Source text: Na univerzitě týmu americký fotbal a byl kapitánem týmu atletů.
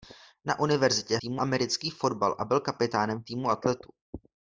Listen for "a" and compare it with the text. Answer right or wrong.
right